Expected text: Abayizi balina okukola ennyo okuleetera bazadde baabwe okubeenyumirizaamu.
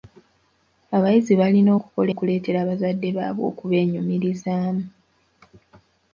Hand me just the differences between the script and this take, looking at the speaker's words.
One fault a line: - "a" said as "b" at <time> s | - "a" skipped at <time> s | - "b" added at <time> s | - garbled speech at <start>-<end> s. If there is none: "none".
- "ennyo" skipped at 2.1 s